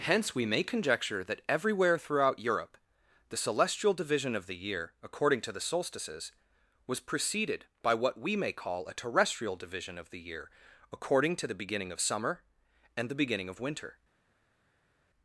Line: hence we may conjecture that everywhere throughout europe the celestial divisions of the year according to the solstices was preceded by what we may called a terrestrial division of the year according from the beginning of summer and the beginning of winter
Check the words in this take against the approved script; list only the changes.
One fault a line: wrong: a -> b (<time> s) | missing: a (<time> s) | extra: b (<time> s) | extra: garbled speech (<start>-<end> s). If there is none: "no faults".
wrong: divisions -> division (3.9 s)
wrong: called -> call (8.5 s)
wrong: from -> to (11.3 s)